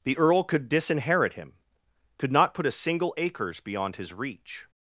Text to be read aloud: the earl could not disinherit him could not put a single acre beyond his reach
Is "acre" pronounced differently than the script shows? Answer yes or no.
yes